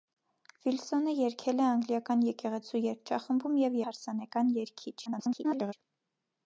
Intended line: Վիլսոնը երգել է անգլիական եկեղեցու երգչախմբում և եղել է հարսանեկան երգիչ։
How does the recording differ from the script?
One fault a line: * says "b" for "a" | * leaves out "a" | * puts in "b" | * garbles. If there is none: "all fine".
* leaves out "եղել"
* garbles